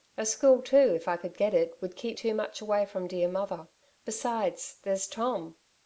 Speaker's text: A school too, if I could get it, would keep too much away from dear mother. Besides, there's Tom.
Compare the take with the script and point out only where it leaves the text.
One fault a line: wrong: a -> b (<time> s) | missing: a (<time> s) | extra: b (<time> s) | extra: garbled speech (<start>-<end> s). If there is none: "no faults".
no faults